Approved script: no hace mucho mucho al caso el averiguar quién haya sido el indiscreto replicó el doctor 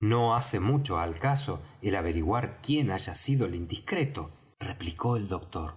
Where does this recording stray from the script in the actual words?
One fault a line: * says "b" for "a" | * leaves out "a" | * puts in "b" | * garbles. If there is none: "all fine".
* leaves out "mucho"